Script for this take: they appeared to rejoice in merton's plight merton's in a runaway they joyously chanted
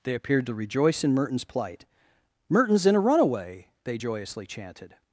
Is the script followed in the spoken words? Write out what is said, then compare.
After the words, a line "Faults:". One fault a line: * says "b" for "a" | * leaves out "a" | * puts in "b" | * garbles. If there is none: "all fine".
they appeared to rejoice in merton's plight merton's in a runaway they joyously chanted
Faults:
all fine